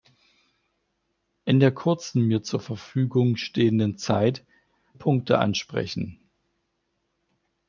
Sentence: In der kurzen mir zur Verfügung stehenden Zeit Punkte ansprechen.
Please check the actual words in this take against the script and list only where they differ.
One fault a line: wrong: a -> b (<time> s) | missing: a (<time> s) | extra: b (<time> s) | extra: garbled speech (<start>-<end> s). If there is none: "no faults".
no faults